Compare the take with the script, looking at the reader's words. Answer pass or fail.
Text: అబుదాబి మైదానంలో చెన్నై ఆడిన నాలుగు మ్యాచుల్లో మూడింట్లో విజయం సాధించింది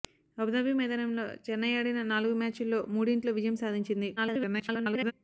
fail